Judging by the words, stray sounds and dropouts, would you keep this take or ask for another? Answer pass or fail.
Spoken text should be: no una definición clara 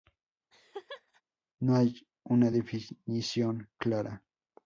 fail